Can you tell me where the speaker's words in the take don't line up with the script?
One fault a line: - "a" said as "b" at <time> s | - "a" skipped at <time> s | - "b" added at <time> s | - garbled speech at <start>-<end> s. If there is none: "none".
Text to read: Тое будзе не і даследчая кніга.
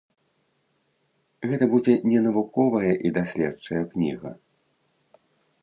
- "Тое" said as "Гэта" at 1.5 s
- "навуковая" added at 2.3 s